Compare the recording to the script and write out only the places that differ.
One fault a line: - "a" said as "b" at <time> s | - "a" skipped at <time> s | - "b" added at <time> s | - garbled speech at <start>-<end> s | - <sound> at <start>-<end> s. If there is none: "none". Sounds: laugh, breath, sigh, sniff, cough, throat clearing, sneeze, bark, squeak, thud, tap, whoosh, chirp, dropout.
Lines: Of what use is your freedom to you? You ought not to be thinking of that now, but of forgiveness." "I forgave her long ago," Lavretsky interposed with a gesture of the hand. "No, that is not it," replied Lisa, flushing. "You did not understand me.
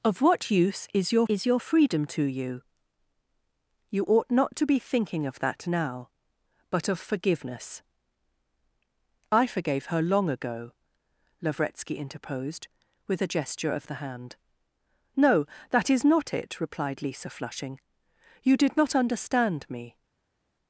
- "is your" added at 1.3 s